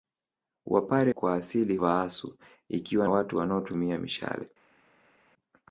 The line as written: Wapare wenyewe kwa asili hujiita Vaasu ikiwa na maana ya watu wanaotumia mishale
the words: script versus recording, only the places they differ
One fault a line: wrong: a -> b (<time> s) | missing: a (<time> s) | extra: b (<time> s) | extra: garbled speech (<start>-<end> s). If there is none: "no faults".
missing: wenyewe (1.1 s)
missing: hujiita (1.8 s)
missing: na maana ya (3.1 s)